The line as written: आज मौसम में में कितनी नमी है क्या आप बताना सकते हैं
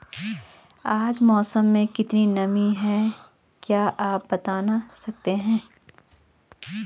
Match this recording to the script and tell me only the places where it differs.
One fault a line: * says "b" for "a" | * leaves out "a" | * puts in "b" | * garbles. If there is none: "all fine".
* leaves out "में"